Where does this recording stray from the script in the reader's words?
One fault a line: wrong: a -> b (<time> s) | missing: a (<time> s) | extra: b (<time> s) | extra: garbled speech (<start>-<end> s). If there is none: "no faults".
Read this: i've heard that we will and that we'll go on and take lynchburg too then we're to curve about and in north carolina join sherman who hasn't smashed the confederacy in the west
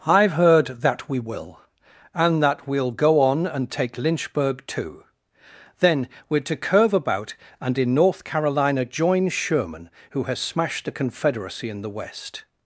wrong: hasn't -> has (10.2 s)